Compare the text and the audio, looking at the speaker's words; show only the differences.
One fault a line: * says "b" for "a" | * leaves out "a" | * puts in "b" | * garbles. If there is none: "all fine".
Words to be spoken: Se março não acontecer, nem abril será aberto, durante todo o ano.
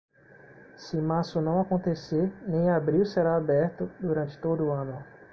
all fine